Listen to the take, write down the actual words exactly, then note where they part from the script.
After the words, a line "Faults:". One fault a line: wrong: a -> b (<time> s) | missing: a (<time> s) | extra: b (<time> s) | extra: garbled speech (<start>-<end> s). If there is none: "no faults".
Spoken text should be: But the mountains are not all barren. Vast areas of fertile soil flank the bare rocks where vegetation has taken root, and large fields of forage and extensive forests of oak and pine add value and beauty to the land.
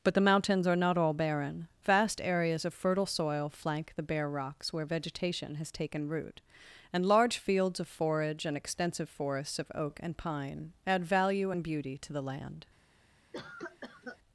But the mountains are not all barren. Vast areas of fertile soil flank the bare rocks where vegetation has taken root, and large fields of forage and extensive forests of oak and pine add value and beauty to the land.
Faults:
no faults